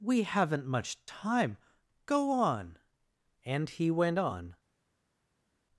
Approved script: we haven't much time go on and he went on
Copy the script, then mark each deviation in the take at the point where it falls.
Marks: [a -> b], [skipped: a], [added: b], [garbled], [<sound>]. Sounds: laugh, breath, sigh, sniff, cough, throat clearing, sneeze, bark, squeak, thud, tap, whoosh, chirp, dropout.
we haven't much time go on and he went on